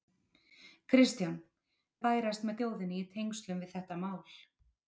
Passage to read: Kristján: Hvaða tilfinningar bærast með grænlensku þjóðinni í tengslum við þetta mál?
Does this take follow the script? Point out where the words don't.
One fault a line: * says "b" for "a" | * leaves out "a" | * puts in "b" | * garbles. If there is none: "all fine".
* leaves out "Hvaða tilfinningar"
* leaves out "grænlensku"